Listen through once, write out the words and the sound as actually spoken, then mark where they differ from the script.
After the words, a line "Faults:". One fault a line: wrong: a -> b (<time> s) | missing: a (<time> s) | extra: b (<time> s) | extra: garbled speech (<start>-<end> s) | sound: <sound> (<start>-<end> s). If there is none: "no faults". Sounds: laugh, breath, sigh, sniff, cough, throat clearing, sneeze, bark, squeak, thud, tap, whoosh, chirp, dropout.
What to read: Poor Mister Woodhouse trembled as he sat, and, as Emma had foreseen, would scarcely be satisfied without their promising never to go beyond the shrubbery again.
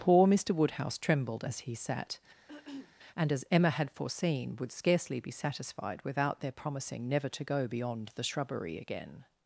Poor Mister Woodhouse trembled as he sat, and, as Emma had foreseen, would scarcely be satisfied without their promising never to go beyond the shrubbery again.
Faults:
sound: throat clearing (2.5-3.0 s)